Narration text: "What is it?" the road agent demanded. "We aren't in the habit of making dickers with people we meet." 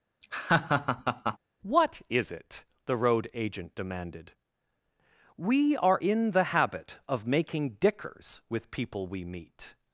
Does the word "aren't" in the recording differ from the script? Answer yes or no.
yes